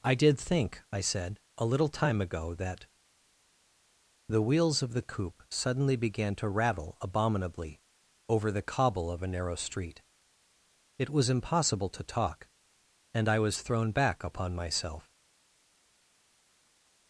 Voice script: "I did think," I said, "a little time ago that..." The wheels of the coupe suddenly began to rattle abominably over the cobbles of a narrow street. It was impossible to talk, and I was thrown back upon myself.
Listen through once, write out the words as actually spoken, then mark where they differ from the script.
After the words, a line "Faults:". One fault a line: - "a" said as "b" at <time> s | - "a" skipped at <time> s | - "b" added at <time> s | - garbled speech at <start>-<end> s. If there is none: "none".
"I did think," I said, "a little time ago that..." The wheels of the coupe suddenly began to rattle abominably over the cobble of a narrow street. It was impossible to talk, and I was thrown back upon myself.
Faults:
- "cobbles" said as "cobble" at 8.6 s